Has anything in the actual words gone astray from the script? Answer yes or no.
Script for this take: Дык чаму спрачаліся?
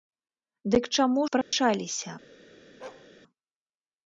no